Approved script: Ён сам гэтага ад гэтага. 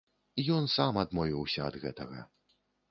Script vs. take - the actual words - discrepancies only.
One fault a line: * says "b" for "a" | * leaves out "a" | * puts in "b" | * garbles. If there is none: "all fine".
* says "адмовіўся" for "гэтага"